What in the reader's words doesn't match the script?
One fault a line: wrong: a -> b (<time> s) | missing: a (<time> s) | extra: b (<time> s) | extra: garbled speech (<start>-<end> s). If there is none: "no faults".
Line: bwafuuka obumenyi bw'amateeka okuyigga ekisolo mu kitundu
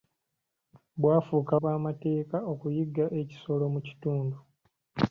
missing: obumenyi (1.5 s)